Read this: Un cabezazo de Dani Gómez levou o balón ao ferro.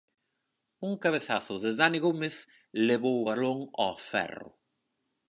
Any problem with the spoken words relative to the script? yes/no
no